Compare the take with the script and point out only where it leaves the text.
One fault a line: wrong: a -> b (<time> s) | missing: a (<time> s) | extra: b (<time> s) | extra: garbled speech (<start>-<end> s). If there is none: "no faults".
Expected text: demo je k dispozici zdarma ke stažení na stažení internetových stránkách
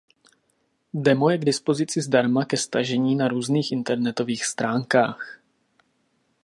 wrong: stažení -> různých (3.3 s)